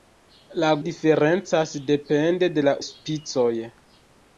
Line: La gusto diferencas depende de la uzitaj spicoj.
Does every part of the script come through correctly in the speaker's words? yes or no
no